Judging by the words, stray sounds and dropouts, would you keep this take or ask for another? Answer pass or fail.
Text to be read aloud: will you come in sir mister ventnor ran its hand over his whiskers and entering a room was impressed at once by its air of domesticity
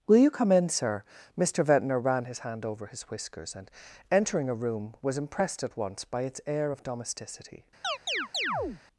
fail